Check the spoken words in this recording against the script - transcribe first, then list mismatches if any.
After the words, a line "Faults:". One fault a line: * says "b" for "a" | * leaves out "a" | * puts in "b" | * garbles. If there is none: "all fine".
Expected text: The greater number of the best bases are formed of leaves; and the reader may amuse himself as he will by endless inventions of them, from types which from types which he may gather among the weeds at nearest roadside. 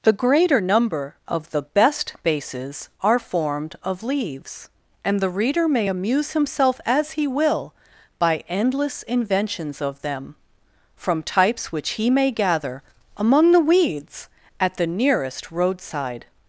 The greater number of the best bases are formed of leaves; and the reader may amuse himself as he will by endless inventions of them, from types which he may gather among the weeds at the nearest roadside.
Faults:
* leaves out "from types which"
* puts in "the"